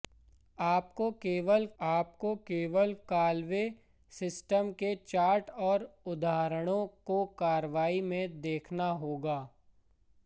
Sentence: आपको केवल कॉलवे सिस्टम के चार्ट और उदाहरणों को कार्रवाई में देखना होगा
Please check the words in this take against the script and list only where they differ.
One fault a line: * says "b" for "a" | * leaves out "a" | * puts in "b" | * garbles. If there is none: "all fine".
* puts in "आपको केवल"